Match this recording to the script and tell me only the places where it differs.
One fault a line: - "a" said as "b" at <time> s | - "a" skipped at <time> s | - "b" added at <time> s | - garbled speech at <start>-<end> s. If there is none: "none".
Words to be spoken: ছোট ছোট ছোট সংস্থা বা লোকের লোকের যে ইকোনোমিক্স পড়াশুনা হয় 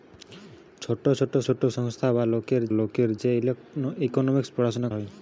none